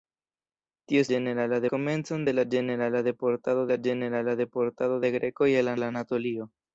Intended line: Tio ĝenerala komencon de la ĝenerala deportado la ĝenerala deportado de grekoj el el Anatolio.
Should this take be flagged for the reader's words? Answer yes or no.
no